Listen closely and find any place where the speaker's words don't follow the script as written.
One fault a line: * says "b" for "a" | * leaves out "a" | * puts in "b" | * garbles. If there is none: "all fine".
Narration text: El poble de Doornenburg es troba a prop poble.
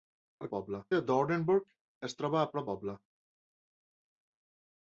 all fine